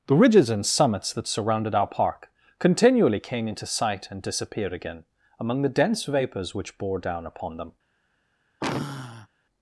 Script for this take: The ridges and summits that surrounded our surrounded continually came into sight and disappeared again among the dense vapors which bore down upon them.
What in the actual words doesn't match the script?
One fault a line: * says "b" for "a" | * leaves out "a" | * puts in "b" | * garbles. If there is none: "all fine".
* says "park" for "surrounded"